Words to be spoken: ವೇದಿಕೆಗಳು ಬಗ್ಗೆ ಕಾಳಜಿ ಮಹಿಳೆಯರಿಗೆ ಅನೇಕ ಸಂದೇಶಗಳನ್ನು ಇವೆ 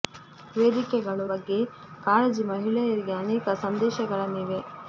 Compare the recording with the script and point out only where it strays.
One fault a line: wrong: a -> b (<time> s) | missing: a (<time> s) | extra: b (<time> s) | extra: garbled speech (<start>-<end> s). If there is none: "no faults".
no faults